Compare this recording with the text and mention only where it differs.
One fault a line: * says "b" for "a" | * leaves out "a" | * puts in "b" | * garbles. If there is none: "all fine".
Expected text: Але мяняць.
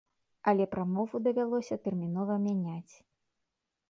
* puts in "прамову давялося тэрмінова"